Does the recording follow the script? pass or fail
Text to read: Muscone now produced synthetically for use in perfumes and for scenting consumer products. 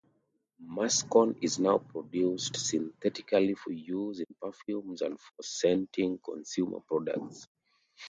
fail